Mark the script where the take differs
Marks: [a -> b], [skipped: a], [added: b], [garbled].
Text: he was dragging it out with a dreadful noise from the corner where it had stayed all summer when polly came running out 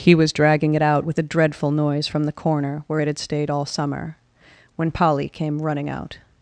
he was dragging it out with a dreadful noise from the corner where it had stayed all summer when polly came running out